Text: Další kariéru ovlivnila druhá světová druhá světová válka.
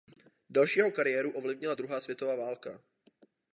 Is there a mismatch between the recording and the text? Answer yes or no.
yes